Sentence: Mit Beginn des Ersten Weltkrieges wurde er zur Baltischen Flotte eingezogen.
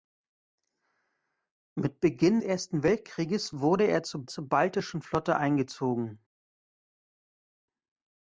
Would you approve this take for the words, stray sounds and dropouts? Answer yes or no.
no